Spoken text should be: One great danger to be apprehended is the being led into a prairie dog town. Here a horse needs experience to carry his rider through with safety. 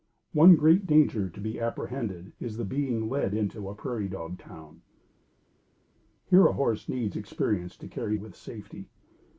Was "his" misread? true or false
true